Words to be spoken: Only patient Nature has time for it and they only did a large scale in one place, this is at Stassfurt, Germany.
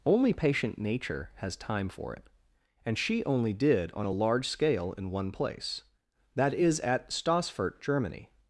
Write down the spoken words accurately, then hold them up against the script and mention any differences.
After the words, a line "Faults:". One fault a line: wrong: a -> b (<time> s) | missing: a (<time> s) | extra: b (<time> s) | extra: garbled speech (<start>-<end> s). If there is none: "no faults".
Only patient Nature has time for it and she only did on a large scale in one place, that is at Stassfurt, Germany.
Faults:
wrong: they -> she (3.0 s)
extra: on (3.9 s)
wrong: this -> that (6.4 s)